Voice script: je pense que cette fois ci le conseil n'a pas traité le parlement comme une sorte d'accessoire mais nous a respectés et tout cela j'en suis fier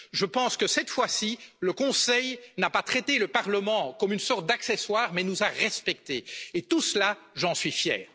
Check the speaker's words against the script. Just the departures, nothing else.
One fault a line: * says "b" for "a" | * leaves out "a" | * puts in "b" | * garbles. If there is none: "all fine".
all fine